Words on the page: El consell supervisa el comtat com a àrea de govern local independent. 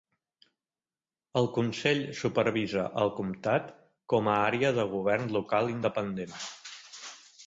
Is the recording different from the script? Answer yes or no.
no